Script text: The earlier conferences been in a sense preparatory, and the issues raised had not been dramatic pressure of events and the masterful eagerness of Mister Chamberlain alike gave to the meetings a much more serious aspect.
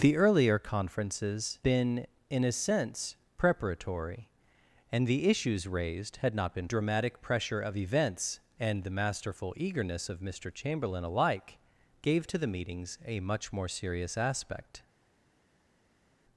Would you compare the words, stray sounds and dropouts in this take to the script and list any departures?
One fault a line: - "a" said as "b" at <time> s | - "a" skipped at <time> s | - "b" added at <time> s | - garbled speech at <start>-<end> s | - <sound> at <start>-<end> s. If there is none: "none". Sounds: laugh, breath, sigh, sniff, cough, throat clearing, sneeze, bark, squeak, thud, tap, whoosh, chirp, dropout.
none